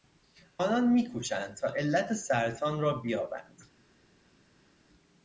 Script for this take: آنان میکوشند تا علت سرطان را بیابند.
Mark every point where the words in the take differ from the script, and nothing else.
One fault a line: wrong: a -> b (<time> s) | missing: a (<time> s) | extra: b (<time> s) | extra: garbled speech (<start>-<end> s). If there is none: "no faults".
no faults